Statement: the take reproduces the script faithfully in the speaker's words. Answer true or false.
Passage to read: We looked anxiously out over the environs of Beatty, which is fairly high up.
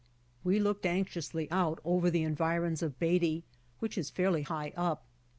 true